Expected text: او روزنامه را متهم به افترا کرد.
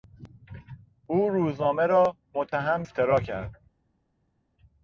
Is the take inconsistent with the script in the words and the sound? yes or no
yes